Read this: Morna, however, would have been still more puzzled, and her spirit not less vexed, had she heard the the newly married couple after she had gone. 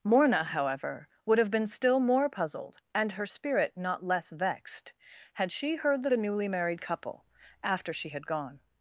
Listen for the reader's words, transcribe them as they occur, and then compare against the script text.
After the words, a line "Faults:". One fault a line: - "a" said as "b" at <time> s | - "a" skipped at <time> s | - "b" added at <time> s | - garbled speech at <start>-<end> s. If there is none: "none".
Morna, however, would have been still more puzzled, and her spirit not less vexed, had she heard the the newly married couple after she had gone.
Faults:
none